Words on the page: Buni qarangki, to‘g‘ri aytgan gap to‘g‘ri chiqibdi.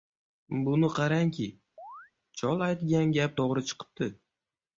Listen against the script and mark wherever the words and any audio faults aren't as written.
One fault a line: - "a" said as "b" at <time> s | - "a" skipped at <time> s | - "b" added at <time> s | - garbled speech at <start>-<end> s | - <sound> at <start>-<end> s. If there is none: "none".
- chirp at 1.8-2.1 s
- "to‘g‘ri" said as "chol" at 2.4 s